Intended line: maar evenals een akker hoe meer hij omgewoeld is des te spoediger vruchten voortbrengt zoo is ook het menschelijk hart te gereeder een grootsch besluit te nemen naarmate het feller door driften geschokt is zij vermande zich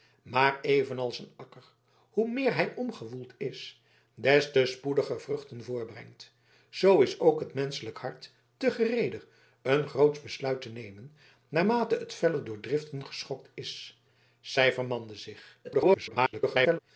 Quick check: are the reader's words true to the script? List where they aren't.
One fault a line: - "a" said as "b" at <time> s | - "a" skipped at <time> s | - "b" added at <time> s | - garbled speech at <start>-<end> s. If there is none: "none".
- garbled speech at 15.6-16.8 s